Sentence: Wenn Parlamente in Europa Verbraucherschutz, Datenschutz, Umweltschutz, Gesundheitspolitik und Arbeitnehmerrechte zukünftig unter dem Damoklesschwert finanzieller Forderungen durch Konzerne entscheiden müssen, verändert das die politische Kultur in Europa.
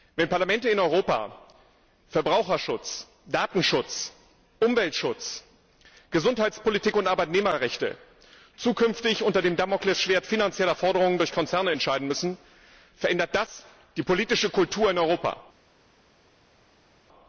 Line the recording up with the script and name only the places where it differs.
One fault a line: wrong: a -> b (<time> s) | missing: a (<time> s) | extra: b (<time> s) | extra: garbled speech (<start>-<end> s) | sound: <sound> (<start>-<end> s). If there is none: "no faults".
no faults